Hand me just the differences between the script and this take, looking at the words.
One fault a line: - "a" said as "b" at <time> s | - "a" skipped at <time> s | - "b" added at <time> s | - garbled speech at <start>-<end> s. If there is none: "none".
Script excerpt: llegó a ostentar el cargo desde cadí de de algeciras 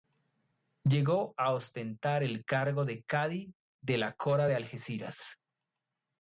- "desde" said as "de" at 2.9 s
- "la cora" added at 4.0 s